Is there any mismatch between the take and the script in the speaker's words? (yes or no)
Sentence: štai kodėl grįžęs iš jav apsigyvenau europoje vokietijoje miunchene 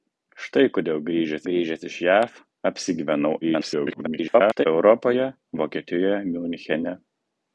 yes